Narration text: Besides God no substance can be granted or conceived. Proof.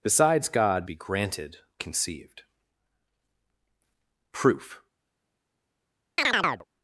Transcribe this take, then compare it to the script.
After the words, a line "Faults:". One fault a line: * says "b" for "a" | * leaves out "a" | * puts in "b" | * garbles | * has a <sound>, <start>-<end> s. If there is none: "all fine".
Besides God be granted conceived. Proof.
Faults:
* leaves out "no substance can"
* leaves out "or"
* has a chirp, 6.2-6.7 s